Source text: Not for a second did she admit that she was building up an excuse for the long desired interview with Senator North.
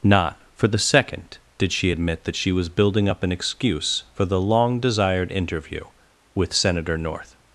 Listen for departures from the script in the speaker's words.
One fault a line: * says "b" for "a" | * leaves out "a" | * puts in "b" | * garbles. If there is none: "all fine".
* says "the" for "a"